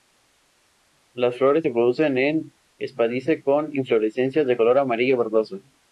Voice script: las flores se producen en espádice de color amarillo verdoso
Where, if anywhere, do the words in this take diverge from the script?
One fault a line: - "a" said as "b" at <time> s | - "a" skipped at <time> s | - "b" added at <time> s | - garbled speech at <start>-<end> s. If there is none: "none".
- "con inflorescencias" added at 3.4 s